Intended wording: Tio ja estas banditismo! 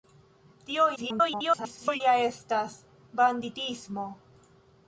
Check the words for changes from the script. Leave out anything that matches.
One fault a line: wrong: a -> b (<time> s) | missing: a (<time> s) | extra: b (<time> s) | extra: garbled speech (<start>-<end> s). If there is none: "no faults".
extra: garbled speech (1.0-2.0 s)